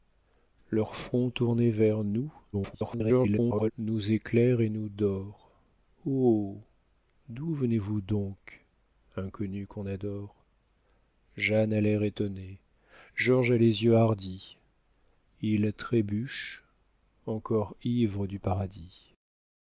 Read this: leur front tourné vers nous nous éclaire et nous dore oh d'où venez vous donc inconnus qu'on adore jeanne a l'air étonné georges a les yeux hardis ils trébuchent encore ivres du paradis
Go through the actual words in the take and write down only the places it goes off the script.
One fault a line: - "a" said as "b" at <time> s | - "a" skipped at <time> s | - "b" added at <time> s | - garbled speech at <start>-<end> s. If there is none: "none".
- garbled speech at 2.5-3.7 s